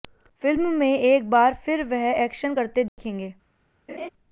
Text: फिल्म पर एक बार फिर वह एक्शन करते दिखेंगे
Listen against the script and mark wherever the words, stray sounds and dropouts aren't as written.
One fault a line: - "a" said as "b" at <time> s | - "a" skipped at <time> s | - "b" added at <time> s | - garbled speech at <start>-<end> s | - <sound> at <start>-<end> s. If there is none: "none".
- "पर" said as "में" at 0.7 s
- dropout at 2.9-3.0 s
- laugh at 3.9-4.1 s